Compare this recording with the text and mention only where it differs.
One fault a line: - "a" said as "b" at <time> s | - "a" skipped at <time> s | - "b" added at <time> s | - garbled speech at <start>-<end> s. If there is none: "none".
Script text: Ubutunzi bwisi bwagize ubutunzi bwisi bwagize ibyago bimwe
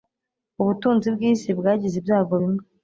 - "ubutunzi bwisi bwagize" skipped at 1.9 s